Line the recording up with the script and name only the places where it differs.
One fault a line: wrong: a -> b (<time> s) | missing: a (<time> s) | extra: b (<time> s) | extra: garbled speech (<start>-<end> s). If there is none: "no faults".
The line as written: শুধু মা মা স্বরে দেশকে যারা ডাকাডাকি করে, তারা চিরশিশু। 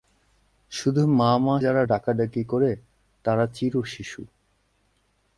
missing: স্বরে দেশকে (1.6 s)